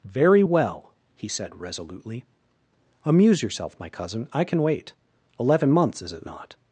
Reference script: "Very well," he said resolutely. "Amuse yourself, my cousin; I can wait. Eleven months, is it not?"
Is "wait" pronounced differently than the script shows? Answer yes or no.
no